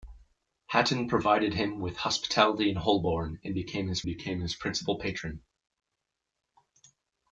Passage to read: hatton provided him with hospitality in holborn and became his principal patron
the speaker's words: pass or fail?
fail